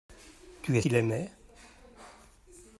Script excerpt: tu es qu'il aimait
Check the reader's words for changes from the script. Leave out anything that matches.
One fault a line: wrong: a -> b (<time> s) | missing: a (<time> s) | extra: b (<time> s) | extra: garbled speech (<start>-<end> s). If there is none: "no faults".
no faults